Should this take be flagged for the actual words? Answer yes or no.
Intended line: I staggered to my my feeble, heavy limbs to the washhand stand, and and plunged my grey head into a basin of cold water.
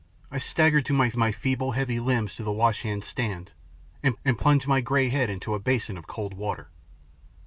no